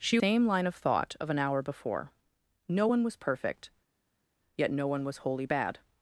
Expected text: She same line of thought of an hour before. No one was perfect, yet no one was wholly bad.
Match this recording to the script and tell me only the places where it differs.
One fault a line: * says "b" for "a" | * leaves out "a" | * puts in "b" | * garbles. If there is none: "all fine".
all fine